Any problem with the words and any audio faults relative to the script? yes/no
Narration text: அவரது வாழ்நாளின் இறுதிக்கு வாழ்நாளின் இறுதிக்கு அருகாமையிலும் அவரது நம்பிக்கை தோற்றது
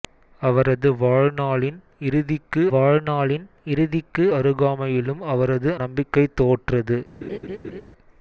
yes